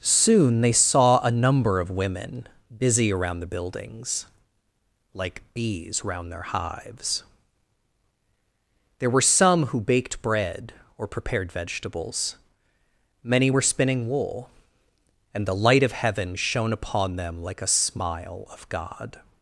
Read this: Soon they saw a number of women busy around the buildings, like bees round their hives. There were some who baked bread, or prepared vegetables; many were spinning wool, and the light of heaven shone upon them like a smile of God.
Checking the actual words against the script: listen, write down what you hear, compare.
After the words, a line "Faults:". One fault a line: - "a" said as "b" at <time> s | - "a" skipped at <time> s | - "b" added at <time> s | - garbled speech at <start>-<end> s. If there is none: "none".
Soon they saw a number of women busy around the buildings, like bees round their hives. There were some who baked bread, or prepared vegetables; many were spinning wool, and the light of heaven shone upon them like a smile of God.
Faults:
none